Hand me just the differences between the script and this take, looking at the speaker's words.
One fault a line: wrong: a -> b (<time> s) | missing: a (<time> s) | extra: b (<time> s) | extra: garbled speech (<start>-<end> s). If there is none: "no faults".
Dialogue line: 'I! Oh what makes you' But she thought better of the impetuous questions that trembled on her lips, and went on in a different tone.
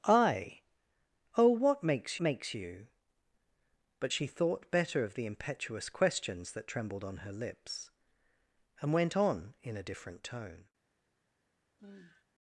extra: makes (2.2 s)